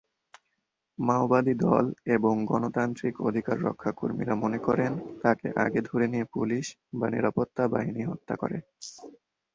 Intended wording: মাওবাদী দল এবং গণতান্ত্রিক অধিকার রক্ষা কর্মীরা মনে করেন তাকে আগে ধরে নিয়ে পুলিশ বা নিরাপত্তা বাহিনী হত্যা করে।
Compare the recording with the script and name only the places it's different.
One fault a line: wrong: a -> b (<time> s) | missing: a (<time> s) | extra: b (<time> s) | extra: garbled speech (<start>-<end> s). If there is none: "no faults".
no faults